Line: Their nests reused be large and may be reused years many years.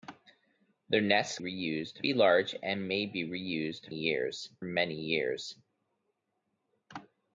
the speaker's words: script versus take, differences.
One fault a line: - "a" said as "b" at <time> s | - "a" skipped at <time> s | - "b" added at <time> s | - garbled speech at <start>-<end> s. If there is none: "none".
none